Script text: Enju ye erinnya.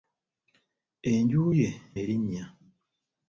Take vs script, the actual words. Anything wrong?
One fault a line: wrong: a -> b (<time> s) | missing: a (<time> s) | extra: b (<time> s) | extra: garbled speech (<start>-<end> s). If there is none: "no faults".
no faults